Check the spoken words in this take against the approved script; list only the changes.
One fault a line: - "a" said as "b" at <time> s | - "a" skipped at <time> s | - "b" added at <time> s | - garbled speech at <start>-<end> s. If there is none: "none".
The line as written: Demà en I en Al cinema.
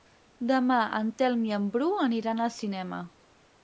- "Telm" added at 1.2 s
- "Bru aniran" added at 1.8 s